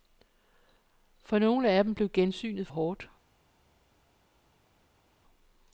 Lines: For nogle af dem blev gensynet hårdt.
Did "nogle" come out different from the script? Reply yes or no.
no